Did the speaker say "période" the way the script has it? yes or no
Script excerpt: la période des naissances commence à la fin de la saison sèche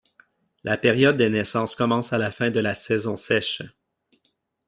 yes